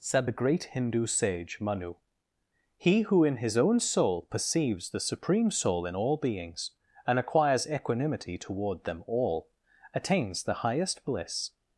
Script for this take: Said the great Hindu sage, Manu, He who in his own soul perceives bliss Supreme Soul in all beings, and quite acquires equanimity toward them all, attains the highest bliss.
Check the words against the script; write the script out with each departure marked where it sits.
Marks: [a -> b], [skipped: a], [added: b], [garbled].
Said the great Hindu sage, Manu, He who in his own soul perceives [bliss -> the] Supreme Soul in all beings, and [skipped: quite] acquires equanimity toward them all, attains the highest bliss.